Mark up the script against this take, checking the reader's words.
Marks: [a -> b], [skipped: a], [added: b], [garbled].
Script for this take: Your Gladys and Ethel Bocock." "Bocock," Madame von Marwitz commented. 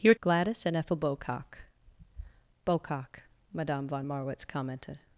Your Gladys and Ethel Bocock." "Bocock," Madame von Marwitz commented.